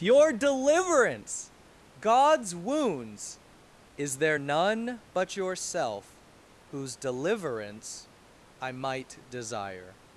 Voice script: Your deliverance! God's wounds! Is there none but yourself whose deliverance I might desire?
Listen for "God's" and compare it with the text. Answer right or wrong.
right